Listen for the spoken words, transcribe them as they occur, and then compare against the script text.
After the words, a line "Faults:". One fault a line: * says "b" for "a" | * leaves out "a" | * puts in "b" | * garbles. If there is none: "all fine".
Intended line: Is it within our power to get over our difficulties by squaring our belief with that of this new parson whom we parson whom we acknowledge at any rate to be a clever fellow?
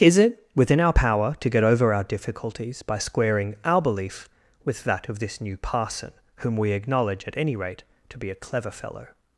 Is it within our power to get over our difficulties by squaring our belief with that of this new parson whom we acknowledge at any rate to be a clever fellow?
Faults:
* leaves out "parson whom we"